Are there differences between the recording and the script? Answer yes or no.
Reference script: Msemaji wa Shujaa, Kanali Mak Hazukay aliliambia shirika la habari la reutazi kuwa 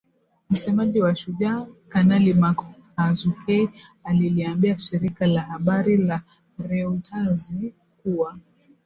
no